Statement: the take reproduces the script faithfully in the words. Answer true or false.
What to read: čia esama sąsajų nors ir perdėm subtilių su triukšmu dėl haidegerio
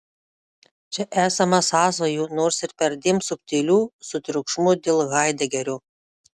true